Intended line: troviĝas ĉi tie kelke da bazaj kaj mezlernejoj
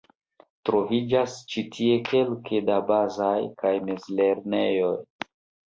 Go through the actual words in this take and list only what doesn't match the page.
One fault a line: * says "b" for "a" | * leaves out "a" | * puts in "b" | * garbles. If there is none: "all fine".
all fine